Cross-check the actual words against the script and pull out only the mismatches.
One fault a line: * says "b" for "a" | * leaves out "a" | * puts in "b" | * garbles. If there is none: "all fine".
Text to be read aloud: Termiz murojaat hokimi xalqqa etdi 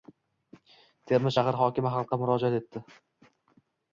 * says "shahar" for "murojaat"
* puts in "murojaat"